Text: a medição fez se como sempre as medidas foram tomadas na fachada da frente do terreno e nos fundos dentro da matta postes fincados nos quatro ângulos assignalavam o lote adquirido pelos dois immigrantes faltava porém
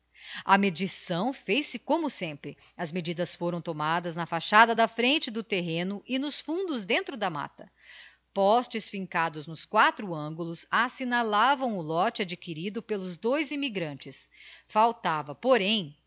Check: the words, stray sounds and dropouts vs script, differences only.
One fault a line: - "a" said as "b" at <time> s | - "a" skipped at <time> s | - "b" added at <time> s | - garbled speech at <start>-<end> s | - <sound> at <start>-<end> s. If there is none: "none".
none